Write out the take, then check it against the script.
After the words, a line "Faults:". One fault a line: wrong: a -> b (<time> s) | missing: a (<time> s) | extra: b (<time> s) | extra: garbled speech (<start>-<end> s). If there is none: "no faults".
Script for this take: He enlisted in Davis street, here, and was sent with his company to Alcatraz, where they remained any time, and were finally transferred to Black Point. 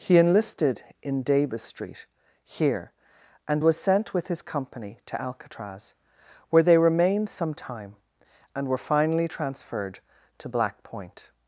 He enlisted in Davis street, here, and was sent with his company to Alcatraz, where they remained some time, and were finally transferred to Black Point.
Faults:
wrong: any -> some (7.3 s)